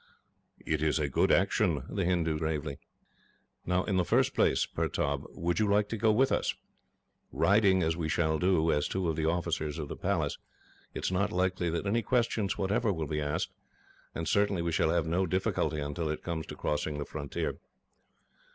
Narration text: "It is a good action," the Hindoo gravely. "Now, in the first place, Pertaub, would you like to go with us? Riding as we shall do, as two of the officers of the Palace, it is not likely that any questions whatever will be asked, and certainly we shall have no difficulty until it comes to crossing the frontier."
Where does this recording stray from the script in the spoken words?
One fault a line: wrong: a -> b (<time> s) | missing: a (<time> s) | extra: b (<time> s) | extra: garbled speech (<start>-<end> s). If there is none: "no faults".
no faults